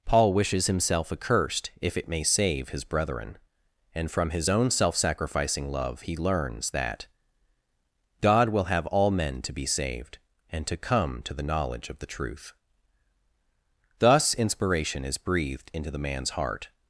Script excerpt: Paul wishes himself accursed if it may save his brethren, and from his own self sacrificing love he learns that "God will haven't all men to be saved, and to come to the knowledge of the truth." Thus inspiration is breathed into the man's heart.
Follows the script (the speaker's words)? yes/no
no